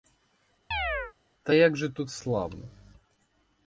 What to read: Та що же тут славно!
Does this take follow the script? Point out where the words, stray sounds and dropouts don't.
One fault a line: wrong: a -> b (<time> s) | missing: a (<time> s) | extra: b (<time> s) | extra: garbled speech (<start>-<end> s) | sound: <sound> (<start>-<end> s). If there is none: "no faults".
sound: chirp (0.7-1.1 s)
wrong: що -> як (1.5 s)